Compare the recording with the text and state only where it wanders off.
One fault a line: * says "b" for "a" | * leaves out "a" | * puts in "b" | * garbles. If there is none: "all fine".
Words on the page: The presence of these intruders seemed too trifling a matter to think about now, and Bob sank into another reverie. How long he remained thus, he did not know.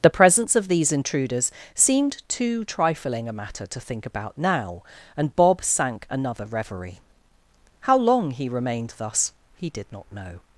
* leaves out "into"